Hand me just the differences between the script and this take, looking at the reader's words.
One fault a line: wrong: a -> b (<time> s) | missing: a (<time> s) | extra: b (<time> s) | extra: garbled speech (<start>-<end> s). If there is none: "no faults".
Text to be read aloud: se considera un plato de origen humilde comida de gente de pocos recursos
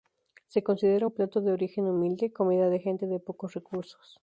no faults